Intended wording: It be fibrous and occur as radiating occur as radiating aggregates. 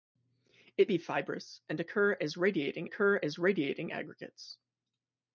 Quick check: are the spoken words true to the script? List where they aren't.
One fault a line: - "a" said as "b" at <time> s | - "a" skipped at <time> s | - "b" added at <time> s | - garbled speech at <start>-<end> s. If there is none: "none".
none